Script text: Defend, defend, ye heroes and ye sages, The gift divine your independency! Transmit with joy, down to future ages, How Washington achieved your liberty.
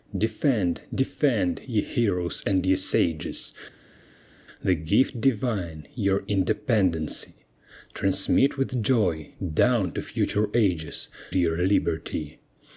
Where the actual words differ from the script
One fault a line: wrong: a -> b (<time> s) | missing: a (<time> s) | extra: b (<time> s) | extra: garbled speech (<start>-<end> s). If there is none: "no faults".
missing: How Washington achieved (11.1 s)